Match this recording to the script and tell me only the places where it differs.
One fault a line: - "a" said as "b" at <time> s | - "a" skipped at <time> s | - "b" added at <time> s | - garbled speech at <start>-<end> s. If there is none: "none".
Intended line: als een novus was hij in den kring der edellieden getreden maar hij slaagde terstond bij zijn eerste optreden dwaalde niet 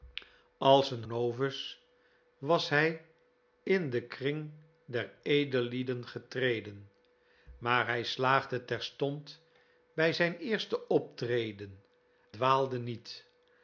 none